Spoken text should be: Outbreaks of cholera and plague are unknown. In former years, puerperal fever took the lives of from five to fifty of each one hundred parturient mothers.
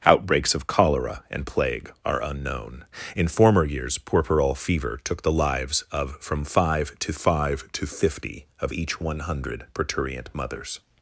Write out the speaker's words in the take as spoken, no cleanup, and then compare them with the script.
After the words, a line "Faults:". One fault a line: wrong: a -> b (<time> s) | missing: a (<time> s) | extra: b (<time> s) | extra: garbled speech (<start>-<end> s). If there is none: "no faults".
Outbreaks of cholera and plague are unknown. In former years, puerperal fever took the lives of from five to five to fifty of each one hundred parturient mothers.
Faults:
extra: five to (7.1 s)